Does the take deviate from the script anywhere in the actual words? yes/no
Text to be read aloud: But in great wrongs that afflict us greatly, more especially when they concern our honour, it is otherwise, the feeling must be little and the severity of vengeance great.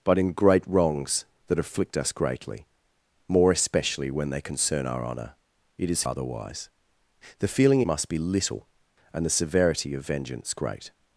no